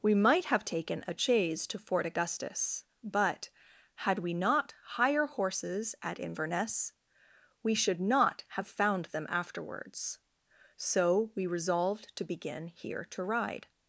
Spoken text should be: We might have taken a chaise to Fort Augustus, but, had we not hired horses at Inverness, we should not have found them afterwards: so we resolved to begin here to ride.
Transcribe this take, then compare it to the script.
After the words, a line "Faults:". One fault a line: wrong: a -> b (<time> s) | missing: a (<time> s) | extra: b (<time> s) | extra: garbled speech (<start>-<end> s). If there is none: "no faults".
We might have taken a chaise to Fort Augustus, but, had we not hire horses at Inverness, we should not have found them afterwards: so we resolved to begin here to ride.
Faults:
wrong: hired -> hire (5.0 s)